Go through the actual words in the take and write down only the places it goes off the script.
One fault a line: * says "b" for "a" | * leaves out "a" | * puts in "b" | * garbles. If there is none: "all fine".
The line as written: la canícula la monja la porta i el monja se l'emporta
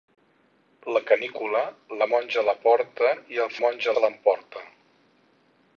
all fine